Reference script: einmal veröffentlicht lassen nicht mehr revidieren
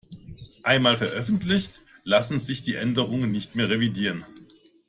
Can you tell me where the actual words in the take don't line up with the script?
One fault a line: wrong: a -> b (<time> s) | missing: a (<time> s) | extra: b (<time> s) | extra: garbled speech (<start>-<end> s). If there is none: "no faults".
extra: sich die änderungen (2.4 s)